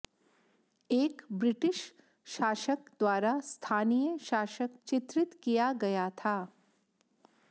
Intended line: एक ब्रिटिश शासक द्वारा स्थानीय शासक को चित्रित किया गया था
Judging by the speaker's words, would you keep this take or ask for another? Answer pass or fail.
fail